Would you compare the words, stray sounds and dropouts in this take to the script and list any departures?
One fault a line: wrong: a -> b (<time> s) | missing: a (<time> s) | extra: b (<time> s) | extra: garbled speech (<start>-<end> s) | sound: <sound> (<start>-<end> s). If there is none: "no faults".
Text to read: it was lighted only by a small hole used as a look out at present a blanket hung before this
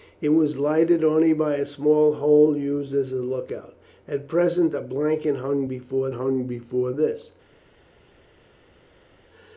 extra: hung before (6.1 s)